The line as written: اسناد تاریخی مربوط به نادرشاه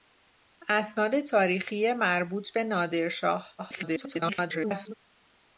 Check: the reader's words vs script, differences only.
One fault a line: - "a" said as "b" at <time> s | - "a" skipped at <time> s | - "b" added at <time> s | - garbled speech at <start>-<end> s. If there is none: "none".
- garbled speech at 3.6-4.9 s